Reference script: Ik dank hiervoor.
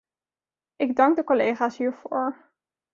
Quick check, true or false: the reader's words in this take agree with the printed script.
false